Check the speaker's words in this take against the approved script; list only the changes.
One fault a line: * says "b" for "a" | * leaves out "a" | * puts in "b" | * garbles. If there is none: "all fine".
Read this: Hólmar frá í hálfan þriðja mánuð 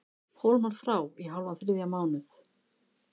all fine